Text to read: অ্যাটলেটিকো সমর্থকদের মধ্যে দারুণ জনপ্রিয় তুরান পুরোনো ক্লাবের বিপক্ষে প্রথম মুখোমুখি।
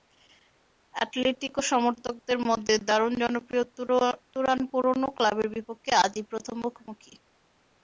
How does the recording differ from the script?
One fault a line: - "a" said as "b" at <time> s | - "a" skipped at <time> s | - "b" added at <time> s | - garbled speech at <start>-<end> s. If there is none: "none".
- "আজই" added at 6.0 s